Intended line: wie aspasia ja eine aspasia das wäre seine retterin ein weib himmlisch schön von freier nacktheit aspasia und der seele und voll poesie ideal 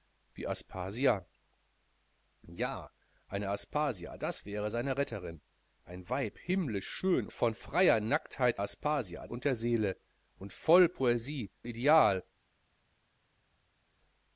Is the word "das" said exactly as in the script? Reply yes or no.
yes